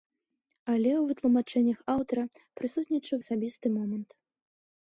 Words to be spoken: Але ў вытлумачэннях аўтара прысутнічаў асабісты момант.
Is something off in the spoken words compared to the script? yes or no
no